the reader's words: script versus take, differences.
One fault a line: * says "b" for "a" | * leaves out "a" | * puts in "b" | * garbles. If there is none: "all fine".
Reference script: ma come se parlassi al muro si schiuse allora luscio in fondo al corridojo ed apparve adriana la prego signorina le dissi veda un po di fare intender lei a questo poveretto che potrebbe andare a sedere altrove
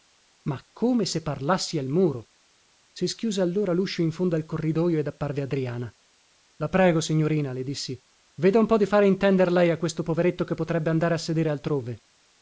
all fine